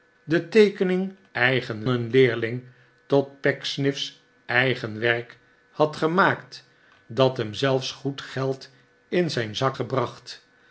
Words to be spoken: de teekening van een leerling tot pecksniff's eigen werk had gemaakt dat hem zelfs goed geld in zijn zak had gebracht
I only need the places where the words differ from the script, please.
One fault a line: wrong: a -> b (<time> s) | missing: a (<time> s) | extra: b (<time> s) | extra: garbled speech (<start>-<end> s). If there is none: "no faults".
wrong: van -> eigen (1.3 s)
missing: had (9.8 s)